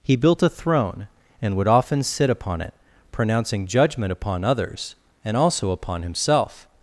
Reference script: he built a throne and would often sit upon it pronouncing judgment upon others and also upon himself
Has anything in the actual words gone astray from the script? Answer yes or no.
no